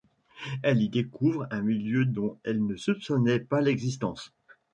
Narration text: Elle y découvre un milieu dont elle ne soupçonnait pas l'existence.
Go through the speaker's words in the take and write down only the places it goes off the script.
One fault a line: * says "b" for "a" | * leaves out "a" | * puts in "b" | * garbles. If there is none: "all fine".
all fine